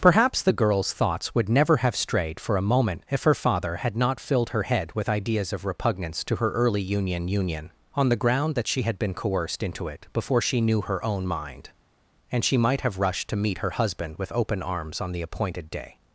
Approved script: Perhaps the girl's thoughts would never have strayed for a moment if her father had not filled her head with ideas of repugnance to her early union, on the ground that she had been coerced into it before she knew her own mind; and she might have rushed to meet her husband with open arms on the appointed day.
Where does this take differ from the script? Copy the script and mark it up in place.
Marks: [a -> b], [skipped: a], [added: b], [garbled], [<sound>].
Perhaps the girl's thoughts would never have strayed for a moment if her father had not filled her head with ideas of repugnance to her early union, [added: union] on the ground that she had been coerced into it before she knew her own mind; and she might have rushed to meet her husband with open arms on the appointed day.